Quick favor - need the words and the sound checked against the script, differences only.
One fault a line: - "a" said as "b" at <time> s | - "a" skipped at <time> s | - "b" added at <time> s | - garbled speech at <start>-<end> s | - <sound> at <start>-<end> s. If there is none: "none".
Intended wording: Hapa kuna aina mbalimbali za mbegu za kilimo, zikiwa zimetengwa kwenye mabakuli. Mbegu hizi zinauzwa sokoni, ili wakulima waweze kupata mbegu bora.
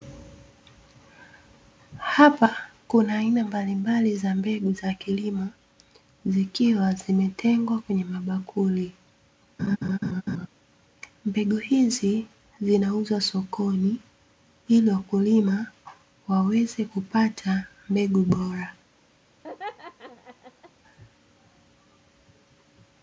- laugh at 9.6-10.5 s
- laugh at 19.4-20.7 s